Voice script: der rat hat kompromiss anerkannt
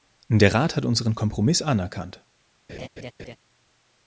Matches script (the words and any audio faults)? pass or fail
fail